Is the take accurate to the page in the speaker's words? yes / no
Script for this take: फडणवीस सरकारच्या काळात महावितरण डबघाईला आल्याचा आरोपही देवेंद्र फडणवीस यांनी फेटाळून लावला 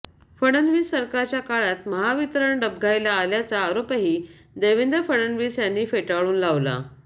yes